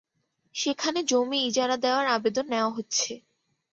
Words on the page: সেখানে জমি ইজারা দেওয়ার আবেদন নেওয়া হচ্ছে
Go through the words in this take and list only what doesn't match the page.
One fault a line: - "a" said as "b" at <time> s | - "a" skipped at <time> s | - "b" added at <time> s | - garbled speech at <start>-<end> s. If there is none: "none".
none